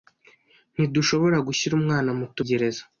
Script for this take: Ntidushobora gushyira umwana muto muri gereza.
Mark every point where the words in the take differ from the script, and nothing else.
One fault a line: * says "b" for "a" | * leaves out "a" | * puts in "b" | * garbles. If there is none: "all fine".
* leaves out "muri"